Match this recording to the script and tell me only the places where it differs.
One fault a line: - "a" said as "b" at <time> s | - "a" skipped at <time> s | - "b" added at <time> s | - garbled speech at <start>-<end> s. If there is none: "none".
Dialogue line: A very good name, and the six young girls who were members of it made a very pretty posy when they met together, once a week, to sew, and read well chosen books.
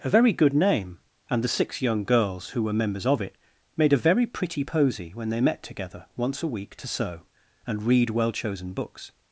none